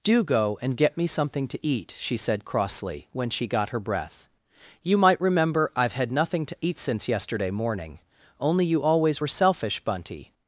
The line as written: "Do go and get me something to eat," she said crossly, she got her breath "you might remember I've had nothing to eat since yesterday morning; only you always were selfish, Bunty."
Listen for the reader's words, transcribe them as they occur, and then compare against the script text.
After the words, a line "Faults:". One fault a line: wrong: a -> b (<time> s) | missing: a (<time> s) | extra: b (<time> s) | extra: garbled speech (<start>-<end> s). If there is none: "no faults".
"Do go and get me something to eat," she said crossly, when she got her breath "you might remember I've had nothing to eat since yesterday morning; only you always were selfish, Bunty."
Faults:
extra: when (3.1 s)